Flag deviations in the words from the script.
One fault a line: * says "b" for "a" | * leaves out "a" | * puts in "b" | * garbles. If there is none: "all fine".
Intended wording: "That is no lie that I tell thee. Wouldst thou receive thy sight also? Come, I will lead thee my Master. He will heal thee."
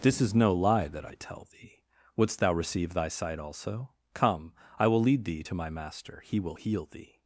* says "This" for "That"
* puts in "to"